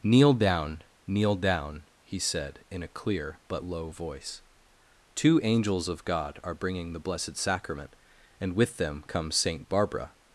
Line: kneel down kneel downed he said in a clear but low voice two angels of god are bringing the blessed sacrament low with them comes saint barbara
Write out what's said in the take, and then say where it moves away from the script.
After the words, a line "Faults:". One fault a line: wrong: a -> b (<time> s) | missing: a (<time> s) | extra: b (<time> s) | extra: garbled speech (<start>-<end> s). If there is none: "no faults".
kneel down kneel down he said in a clear but low voice two angels of god are bringing the blessed sacrament and with them comes saint barbara
Faults:
wrong: downed -> down (1.4 s)
wrong: low -> and (8.4 s)